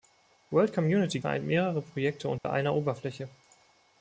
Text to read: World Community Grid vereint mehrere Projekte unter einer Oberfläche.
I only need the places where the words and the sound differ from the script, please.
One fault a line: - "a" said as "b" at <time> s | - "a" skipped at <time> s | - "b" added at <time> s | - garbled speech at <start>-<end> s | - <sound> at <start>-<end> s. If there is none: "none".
- "Grid" skipped at 1.2 s
- dropout at 2.4-2.4 s